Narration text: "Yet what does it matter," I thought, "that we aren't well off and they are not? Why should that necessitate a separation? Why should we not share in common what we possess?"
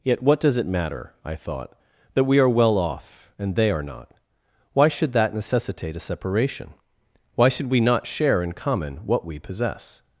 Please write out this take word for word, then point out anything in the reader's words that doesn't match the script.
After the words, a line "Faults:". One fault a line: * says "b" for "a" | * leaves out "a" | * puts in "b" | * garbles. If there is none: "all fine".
"Yet what does it matter," I thought, "that we are well off and they are not? Why should that necessitate a separation? Why should we not share in common what we possess?"
Faults:
* says "are" for "aren't"